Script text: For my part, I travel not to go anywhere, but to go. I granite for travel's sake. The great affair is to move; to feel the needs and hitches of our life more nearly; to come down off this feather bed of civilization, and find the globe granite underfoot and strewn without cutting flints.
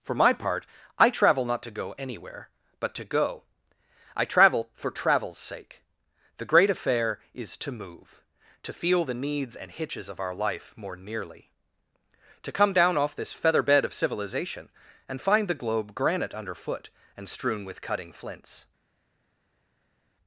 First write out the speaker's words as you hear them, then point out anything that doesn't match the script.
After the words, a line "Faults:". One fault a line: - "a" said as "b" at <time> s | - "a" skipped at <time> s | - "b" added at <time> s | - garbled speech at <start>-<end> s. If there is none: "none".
For my part, I travel not to go anywhere, but to go. I travel for travel's sake. The great affair is to move; to feel the needs and hitches of our life more nearly; to come down off this feather bed of civilization, and find the globe granite underfoot and strewn with cutting flints.
Faults:
- "granite" said as "travel" at 4.2 s
- "without" said as "with" at 17.6 s